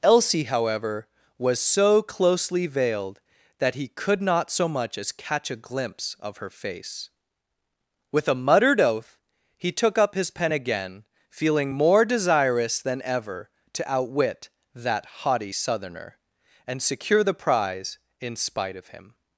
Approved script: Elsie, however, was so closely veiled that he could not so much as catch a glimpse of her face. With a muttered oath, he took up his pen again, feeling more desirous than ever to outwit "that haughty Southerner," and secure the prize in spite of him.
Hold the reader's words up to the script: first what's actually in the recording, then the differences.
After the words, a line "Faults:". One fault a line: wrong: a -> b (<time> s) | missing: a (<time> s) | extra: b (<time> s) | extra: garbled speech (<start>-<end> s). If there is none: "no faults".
Elsie, however, was so closely veiled that he could not so much as catch a glimpse of her face. With a muttered oath, he took up his pen again, feeling more desirous than ever to outwit "that haughty Southerner," and secure the prize in spite of him.
Faults:
no faults